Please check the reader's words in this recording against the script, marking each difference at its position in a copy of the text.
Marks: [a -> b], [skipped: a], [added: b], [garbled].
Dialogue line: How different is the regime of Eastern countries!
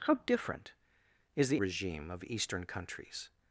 How different is the regime of Eastern countries!